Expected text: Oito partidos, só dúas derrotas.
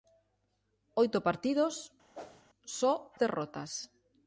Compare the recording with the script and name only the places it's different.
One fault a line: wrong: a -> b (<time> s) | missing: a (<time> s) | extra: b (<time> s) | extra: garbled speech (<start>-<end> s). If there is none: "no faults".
missing: dúas (2.9 s)